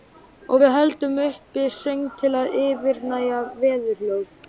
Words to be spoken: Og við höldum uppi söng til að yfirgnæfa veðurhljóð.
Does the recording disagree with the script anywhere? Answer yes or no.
no